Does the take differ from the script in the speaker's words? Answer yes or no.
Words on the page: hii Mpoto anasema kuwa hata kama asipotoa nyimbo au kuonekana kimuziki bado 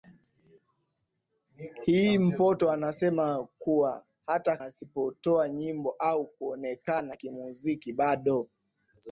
yes